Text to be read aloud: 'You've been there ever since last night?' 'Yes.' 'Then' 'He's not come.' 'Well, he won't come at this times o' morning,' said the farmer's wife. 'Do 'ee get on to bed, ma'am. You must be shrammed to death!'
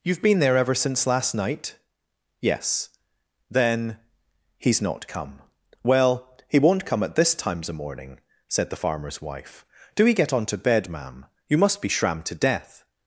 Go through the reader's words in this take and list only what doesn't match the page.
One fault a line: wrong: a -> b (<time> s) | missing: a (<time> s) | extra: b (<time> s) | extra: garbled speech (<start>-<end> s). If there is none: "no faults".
no faults